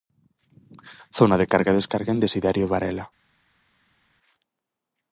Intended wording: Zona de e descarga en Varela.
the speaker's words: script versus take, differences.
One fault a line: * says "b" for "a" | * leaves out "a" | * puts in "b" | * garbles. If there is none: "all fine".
* puts in "carga"
* puts in "Desiderio"